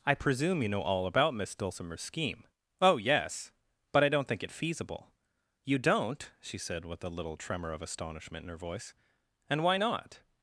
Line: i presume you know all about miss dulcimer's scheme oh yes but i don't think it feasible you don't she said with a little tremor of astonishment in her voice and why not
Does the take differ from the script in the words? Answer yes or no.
no